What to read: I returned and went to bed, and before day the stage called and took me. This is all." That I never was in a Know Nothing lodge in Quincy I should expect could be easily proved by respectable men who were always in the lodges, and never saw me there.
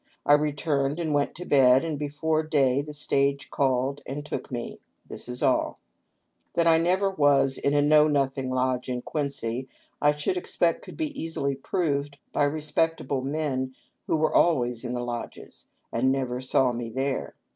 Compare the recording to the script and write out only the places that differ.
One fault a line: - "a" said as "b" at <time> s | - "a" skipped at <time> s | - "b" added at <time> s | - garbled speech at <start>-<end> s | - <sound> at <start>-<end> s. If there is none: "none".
none